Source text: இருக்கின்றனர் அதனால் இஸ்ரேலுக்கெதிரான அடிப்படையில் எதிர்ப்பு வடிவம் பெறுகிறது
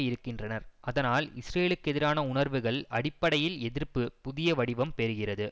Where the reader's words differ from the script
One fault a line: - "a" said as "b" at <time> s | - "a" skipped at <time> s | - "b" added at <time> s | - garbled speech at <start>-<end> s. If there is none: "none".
- "உணர்வுகள்" added at 2.3 s
- "புதிய" added at 4.2 s